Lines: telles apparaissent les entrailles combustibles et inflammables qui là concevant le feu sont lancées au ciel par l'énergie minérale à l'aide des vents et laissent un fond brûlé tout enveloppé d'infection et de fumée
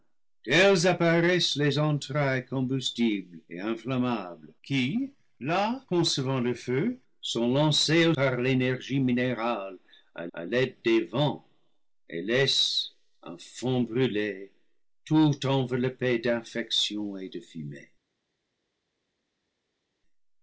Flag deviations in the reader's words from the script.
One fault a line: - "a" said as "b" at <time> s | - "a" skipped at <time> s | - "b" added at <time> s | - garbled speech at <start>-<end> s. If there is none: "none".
- "ciel" skipped at 8.2 s
- "à" added at 10.3 s